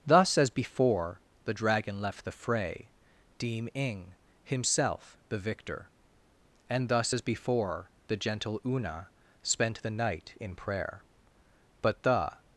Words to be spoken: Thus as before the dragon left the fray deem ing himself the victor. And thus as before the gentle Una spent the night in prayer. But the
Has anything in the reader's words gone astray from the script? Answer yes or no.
no